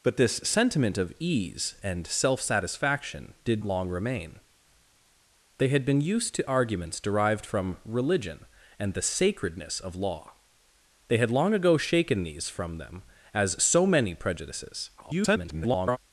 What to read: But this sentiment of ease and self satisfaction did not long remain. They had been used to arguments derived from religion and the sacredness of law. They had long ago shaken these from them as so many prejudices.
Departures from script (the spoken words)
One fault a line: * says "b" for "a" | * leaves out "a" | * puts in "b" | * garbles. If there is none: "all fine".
* leaves out "not"
* garbles